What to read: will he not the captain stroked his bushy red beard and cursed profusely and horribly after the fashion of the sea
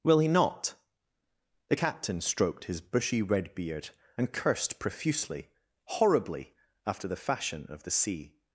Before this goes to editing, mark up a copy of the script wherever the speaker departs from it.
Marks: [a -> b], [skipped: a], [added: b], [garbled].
will he not the captain stroked his bushy red beard and cursed profusely [skipped: and] horribly after the fashion of the sea